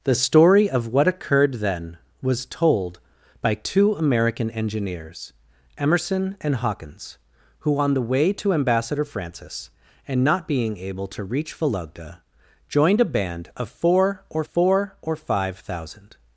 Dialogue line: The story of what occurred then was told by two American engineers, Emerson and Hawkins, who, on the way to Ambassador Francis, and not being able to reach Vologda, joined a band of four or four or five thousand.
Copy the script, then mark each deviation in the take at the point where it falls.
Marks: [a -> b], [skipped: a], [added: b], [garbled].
The story of what occurred then was told by two American engineers, Emerson and Hawkins, who, on the way to Ambassador Francis, and not being able to reach Vologda, joined a band of four or four or five thousand.